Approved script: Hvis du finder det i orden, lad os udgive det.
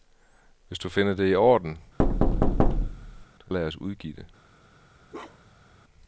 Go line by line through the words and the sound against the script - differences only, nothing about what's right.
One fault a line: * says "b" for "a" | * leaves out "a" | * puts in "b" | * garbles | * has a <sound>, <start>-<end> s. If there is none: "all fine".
* has a thud, 2.0-3.3 s
* has a bark, 5.1-5.7 s